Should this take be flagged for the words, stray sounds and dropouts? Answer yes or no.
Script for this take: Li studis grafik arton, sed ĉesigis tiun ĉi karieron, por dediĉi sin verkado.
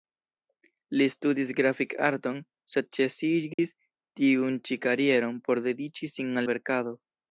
yes